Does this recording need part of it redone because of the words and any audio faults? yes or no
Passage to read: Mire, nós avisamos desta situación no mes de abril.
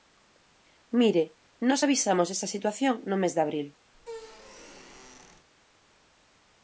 yes